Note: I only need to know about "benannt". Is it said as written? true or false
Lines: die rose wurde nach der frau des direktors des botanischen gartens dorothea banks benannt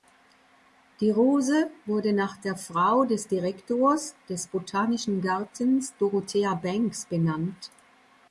true